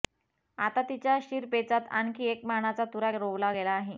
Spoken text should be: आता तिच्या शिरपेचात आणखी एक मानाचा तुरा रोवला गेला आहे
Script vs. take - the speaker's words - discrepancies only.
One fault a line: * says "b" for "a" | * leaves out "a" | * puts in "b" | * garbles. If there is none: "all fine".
all fine